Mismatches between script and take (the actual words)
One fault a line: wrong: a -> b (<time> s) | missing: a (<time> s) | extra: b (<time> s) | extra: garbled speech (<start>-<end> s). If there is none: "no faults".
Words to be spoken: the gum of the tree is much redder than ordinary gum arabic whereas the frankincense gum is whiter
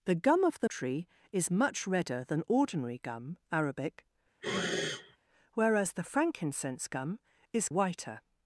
no faults